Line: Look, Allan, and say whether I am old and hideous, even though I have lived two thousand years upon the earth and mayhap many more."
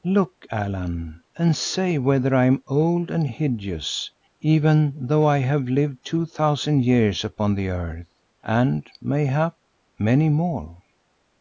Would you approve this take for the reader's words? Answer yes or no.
yes